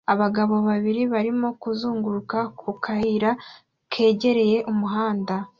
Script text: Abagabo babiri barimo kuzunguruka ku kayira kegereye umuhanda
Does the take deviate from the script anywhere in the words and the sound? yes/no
no